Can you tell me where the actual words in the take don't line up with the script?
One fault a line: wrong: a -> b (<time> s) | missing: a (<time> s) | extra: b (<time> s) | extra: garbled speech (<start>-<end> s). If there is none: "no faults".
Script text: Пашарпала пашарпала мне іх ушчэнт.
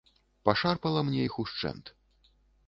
missing: пашарпала (1.0 s)